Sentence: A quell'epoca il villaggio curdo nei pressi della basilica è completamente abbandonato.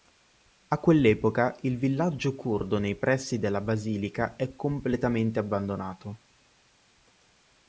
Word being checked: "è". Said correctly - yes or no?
yes